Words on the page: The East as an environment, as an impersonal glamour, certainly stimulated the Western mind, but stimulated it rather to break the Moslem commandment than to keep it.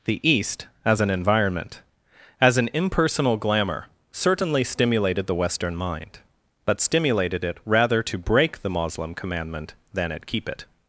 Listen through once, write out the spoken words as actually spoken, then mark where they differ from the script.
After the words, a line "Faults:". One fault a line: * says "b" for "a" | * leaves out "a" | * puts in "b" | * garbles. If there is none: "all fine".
The East as an environment, as an impersonal glamour, certainly stimulated the Western mind, but stimulated it rather to break the Moslem commandment than at keep it.
Faults:
* says "at" for "to"